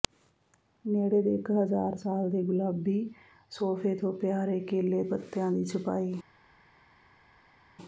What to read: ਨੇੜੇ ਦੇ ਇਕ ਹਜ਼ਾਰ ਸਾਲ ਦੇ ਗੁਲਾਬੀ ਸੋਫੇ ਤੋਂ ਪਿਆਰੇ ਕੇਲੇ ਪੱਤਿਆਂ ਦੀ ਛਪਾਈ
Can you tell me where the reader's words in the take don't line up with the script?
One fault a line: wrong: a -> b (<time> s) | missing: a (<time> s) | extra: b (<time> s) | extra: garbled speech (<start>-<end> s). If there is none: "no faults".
no faults